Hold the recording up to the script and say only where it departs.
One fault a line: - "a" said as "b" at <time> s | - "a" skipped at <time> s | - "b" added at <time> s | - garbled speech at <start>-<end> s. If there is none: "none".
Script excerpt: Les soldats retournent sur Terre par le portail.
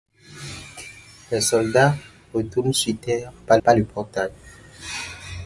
- "par" added at 3.6 s